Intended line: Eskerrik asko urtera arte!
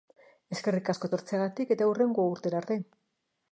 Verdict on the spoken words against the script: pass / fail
fail